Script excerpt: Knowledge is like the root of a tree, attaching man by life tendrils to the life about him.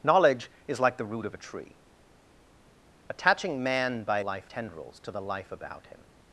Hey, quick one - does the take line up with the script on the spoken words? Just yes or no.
yes